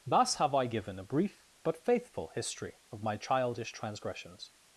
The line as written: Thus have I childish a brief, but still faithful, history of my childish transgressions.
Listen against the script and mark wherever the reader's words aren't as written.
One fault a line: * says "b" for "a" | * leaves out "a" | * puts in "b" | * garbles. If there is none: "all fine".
* says "given" for "childish"
* leaves out "still"